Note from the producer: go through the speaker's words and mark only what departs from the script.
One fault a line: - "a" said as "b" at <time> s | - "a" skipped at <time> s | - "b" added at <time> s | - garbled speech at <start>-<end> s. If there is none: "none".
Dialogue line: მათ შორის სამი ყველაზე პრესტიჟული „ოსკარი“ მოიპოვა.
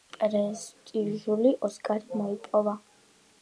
- "შორის სამი ყველაზე" skipped at 0.1 s